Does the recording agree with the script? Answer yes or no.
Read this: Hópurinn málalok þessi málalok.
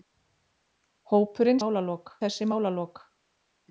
yes